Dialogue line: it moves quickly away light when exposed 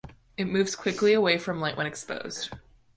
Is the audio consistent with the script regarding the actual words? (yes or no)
no